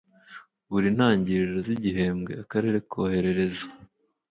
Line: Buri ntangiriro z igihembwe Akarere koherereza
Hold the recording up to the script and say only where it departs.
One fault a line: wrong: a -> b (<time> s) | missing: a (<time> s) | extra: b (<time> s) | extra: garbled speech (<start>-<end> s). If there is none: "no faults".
no faults